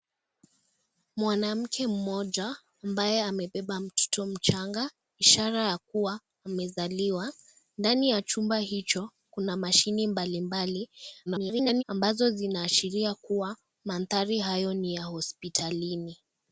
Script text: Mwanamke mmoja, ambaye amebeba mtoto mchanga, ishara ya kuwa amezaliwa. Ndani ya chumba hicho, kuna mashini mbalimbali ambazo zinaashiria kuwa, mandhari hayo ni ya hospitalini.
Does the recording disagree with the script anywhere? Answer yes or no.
yes